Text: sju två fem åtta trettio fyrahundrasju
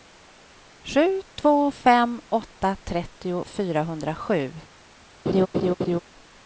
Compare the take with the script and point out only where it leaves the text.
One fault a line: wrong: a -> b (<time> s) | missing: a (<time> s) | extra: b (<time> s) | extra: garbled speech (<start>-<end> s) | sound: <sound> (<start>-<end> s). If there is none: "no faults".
sound: laugh (5.3-6.0 s)